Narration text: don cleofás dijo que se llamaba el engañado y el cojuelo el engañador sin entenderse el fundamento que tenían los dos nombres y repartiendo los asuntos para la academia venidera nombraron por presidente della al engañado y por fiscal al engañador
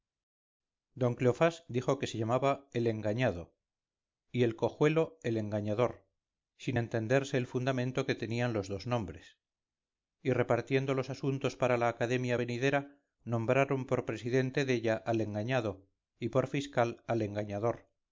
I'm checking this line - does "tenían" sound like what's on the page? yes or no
yes